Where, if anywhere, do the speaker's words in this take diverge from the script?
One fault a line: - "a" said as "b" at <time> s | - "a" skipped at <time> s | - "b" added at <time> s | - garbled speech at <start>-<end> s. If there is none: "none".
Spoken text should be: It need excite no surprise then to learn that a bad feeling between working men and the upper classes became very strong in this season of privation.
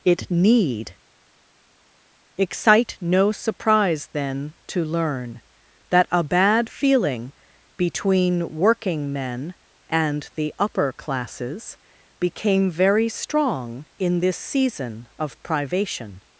none